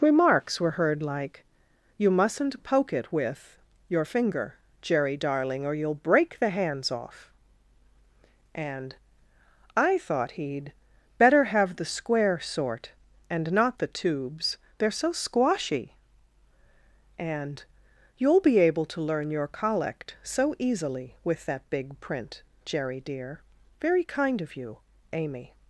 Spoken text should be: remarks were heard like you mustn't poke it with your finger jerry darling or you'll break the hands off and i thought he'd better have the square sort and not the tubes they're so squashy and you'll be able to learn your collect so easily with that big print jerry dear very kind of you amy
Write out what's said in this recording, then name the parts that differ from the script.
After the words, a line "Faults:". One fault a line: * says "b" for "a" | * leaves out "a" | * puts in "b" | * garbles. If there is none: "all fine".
remarks were heard like you mustn't poke it with your finger jerry darling or you'll break the hands off and i thought he'd better have the square sort and not the tubes they're so squashy and you'll be able to learn your collect so easily with that big print jerry dear very kind of you amy
Faults:
all fine